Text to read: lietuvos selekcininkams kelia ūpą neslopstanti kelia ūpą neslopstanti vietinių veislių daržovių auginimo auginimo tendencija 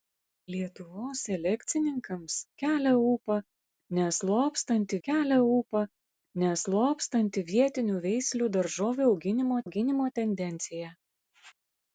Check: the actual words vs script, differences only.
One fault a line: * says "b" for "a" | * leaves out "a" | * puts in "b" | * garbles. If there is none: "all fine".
all fine